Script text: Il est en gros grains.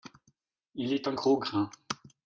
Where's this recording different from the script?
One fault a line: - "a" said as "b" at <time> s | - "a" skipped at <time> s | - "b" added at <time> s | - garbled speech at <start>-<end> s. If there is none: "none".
none